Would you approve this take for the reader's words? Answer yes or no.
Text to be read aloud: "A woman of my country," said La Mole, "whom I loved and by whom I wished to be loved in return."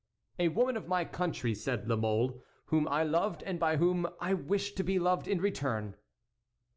yes